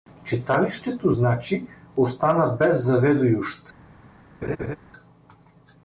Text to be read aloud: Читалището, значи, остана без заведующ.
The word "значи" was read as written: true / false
true